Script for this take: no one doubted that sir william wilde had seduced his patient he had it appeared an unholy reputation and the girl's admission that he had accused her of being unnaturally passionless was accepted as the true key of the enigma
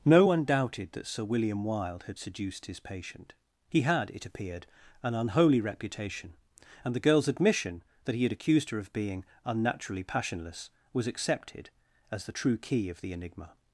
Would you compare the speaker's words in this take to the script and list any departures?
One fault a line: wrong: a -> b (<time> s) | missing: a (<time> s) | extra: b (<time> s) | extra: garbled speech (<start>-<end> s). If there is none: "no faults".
no faults